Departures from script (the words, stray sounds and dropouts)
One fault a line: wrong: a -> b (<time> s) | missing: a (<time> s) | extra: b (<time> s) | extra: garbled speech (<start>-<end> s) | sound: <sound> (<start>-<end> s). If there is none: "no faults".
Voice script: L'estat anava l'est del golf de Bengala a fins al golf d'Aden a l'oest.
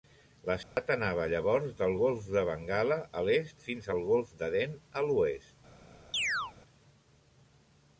sound: dropout (0.6-0.8 s)
wrong: l'est -> llavors (1.3 s)
extra: l'est (3.3 s)
sound: chirp (6.1-6.5 s)